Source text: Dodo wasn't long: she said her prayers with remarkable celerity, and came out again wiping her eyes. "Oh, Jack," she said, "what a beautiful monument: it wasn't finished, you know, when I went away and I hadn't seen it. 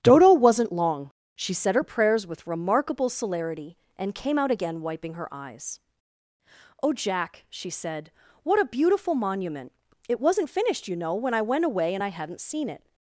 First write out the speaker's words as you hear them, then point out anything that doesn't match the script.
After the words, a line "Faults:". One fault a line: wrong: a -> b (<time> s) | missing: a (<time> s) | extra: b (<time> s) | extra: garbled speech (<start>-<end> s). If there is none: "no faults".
Dodo wasn't long: she said her prayers with remarkable celerity, and came out again wiping her eyes. "Oh, Jack," she said, "what a beautiful monument: it wasn't finished, you know, when I went away and I hadn't seen it.
Faults:
no faults